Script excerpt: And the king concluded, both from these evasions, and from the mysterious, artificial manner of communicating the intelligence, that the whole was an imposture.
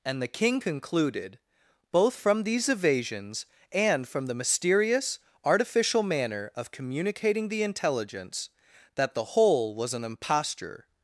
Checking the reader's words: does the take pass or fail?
pass